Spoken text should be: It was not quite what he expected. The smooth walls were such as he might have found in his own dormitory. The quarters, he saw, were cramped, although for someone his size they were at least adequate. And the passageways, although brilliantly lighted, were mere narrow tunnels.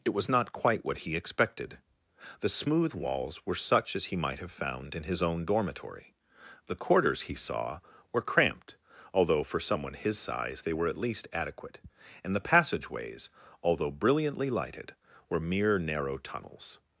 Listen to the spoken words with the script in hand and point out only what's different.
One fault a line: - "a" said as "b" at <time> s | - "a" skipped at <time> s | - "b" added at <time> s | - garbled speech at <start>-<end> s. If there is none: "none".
none